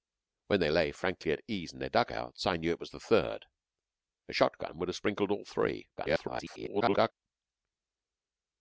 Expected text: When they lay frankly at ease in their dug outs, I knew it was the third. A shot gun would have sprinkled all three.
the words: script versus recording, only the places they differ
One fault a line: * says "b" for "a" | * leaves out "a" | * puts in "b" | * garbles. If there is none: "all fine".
* garbles